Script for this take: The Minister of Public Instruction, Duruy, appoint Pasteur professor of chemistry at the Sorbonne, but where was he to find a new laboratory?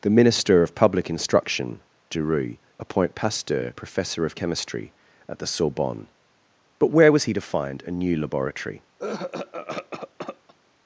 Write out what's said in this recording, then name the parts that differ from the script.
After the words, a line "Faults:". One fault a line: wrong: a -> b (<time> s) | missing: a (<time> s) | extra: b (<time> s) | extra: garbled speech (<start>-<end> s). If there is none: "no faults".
The Minister of Public Instruction, Duruy, appoint Pasteur professor of chemistry at the Sorbonne, but where was he to find a new laboratory?
Faults:
no faults